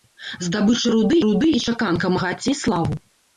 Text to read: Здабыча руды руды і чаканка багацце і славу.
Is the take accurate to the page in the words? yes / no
yes